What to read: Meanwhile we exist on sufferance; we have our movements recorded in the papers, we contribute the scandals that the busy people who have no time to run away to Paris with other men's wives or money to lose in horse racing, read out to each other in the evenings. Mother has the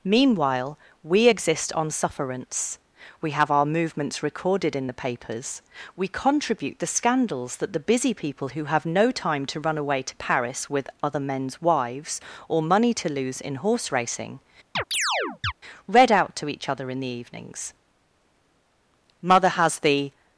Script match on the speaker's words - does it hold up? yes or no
yes